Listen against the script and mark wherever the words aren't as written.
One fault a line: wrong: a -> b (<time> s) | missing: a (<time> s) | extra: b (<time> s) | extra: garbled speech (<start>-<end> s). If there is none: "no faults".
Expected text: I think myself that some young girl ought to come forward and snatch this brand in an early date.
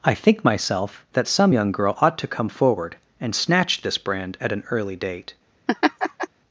wrong: in -> at (4.4 s)